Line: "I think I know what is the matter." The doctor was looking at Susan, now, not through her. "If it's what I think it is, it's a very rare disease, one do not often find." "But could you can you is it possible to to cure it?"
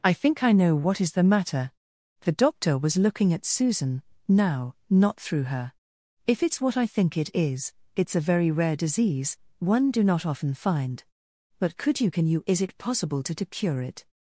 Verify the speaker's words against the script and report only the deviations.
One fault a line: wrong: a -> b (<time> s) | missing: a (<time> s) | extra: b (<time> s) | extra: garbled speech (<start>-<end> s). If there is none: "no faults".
no faults